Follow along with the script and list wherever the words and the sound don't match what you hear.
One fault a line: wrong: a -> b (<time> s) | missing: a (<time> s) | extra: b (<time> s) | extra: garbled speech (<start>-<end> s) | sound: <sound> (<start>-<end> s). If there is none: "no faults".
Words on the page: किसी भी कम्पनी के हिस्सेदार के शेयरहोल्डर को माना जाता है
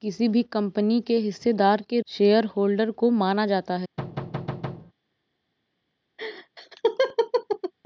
sound: thud (4.0-4.9 s)
sound: laugh (6.2-7.7 s)